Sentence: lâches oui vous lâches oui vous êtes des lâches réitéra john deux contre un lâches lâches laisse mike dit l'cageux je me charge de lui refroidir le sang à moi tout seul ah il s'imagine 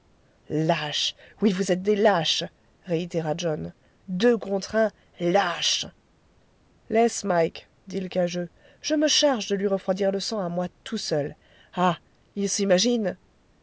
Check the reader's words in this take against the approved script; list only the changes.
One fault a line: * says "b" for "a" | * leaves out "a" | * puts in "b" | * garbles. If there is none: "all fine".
* leaves out "lâches oui vous"
* leaves out "lâches"